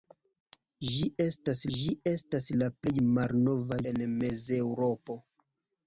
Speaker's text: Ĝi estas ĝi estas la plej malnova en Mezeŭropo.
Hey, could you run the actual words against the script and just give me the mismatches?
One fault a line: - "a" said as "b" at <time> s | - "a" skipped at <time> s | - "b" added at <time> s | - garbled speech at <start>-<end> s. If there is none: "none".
none